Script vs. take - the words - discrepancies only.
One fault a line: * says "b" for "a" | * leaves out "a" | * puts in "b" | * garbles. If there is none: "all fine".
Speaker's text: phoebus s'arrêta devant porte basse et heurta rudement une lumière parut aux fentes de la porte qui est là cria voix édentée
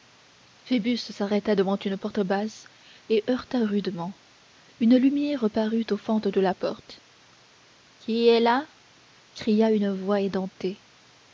* puts in "une"
* puts in "une"